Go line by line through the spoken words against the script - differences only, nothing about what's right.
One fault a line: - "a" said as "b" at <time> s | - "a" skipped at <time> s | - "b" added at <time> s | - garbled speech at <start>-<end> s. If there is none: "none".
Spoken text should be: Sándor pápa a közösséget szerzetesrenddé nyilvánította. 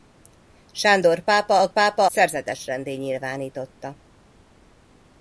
- "közösséget" said as "pápa" at 1.7 s